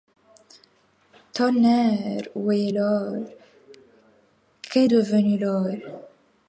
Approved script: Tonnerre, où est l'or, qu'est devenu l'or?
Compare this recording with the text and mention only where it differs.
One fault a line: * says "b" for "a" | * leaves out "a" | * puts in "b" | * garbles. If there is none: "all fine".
all fine